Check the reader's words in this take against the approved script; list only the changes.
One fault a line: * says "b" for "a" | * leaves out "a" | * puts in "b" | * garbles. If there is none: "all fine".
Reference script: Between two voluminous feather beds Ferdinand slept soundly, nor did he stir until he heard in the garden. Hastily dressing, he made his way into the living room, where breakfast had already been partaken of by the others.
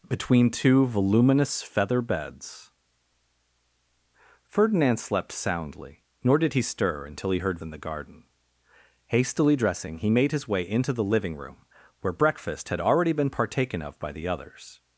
all fine